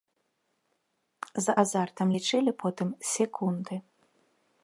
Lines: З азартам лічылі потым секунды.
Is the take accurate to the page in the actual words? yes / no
yes